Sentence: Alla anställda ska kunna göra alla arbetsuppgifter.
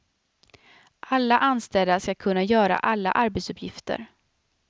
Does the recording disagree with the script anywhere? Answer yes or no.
no